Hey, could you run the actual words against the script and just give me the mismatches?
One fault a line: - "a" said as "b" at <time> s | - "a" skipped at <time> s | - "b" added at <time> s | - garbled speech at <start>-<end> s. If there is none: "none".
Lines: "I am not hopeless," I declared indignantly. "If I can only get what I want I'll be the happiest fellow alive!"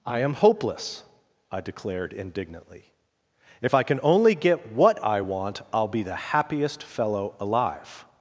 - "not" skipped at 0.3 s